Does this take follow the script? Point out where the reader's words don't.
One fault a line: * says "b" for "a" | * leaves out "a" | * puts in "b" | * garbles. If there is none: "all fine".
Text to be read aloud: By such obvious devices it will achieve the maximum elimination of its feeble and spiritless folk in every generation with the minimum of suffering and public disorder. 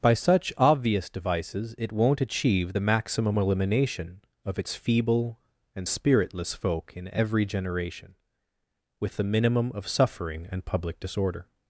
* says "won't" for "will"